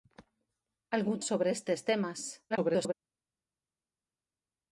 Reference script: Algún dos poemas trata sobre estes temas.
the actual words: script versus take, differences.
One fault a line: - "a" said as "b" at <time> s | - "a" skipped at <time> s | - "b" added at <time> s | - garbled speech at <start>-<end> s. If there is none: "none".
- "dos poemas trata" skipped at 1.2 s
- garbled speech at 2.5-2.9 s